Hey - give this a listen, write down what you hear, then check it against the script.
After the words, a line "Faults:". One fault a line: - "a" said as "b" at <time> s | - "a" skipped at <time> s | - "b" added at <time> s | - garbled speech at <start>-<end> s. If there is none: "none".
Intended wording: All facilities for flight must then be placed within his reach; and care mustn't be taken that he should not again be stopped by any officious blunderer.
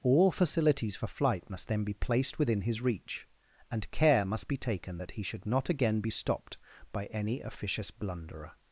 All facilities for flight must then be placed within his reach; and care must be taken that he should not again be stopped by any officious blunderer.
Faults:
- "mustn't" said as "must" at 4.2 s